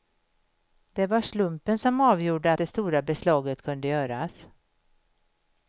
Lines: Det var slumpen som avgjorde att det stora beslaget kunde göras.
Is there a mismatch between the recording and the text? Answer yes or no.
yes